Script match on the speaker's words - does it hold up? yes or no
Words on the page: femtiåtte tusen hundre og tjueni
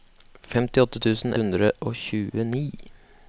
yes